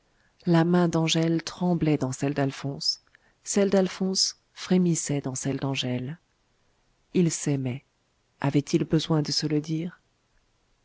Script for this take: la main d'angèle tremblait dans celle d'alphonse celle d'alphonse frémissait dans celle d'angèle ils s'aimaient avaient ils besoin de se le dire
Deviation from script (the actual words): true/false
false